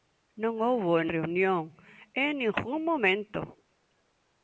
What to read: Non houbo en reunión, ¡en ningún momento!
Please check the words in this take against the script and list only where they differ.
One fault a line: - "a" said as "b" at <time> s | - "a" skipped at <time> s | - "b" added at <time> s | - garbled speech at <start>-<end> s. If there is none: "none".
none